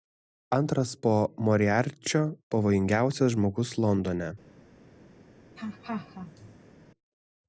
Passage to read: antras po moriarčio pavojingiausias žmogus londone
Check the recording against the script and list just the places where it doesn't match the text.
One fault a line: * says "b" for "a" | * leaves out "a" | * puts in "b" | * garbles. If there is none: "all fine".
all fine